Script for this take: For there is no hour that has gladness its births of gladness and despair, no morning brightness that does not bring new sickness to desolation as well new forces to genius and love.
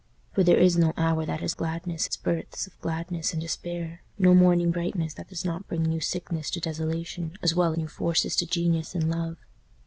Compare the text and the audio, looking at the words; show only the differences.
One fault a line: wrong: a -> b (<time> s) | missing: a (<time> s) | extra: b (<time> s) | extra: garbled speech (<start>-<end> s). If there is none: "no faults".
no faults